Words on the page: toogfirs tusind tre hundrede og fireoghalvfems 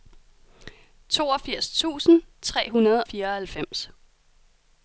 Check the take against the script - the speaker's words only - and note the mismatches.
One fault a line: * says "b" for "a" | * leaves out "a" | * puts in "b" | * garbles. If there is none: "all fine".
* leaves out "og"